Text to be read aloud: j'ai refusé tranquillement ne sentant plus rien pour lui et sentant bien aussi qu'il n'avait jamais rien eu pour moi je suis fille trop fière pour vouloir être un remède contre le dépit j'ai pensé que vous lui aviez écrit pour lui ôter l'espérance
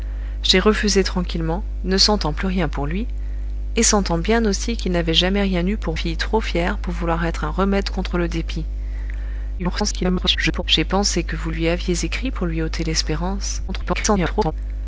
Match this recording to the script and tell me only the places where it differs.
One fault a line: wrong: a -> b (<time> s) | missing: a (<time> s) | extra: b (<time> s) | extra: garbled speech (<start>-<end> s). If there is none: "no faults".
missing: moi je suis (6.0 s)
extra: garbled speech (9.6-10.6 s)
extra: garbled speech (13.7-14.5 s)